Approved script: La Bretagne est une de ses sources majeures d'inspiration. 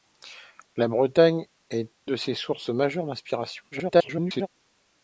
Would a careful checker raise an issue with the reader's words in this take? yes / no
yes